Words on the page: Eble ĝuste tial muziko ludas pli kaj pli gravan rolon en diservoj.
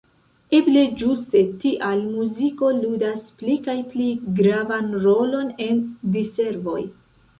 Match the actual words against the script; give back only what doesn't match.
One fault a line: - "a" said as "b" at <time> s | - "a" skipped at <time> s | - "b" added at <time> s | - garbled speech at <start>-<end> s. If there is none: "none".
none